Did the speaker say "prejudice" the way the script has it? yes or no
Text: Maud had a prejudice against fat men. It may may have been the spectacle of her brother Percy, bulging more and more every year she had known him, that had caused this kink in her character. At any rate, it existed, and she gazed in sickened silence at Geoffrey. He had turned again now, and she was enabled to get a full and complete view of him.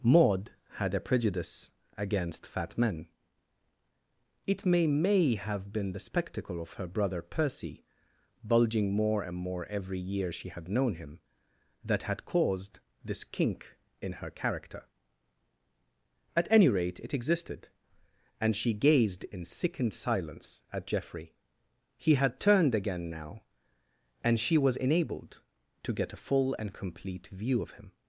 yes